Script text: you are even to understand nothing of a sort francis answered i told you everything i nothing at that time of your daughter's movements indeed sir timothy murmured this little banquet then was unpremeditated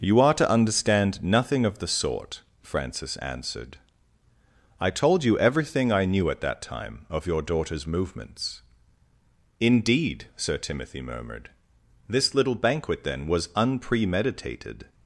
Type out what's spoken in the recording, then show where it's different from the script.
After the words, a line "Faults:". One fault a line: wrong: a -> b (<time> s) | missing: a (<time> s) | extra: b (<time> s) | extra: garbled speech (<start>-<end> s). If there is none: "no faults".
you are to understand nothing of the sort francis answered i told you everything i knew at that time of your daughter's movements indeed sir timothy murmured this little banquet then was unpremeditated
Faults:
missing: even (0.3 s)
wrong: a -> the (1.8 s)
wrong: nothing -> knew (6.0 s)